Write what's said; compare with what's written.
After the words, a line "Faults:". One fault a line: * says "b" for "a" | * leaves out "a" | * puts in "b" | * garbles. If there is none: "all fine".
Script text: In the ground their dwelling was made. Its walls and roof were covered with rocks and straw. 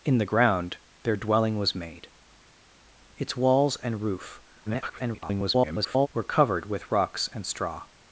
In the ground their dwelling was made. Its walls and roof [garbled] were covered with rocks and straw.
Faults:
* garbles